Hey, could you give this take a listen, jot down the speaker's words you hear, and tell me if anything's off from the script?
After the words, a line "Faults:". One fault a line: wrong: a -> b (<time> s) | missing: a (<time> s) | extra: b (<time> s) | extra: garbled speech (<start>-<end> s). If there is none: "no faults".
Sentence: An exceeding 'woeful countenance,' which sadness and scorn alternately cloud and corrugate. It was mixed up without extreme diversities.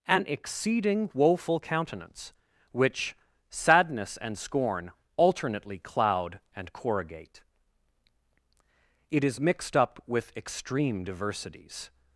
An exceeding 'woeful countenance,' which sadness and scorn alternately cloud and corrugate. It is mixed up with extreme diversities.
Faults:
wrong: was -> is (9.2 s)
wrong: without -> with (10.1 s)